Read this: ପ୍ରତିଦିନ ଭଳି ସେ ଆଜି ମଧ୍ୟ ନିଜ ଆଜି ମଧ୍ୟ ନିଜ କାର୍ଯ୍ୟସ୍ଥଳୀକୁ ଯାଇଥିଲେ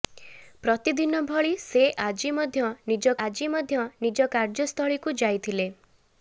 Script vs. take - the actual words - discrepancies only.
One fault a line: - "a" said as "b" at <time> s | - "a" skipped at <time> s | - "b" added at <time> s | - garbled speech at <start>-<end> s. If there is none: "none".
none